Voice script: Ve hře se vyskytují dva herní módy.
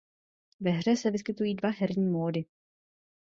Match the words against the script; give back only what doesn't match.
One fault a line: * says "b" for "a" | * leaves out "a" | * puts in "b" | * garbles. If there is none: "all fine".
all fine